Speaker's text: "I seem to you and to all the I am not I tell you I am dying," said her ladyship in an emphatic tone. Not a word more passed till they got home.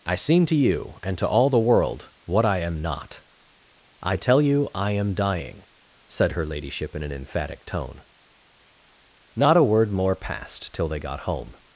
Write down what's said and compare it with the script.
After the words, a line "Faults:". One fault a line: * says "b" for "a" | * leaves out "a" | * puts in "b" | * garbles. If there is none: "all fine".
"I seem to you and to all the world, what I am not I tell you I am dying," said her ladyship in an emphatic tone. Not a word more passed till they got home.
Faults:
* puts in "world what"